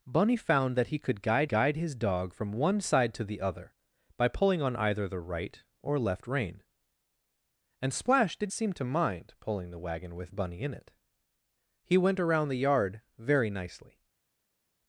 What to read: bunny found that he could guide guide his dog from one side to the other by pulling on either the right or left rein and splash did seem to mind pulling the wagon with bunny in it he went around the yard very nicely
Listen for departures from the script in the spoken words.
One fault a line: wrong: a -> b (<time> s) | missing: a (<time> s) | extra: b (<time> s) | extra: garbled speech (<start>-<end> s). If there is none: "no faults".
no faults